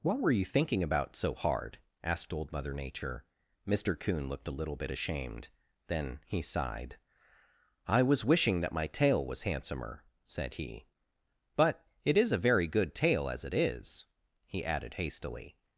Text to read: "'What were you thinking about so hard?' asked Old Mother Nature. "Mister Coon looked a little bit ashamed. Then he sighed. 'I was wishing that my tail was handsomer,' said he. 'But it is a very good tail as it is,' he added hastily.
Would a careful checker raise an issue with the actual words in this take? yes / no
no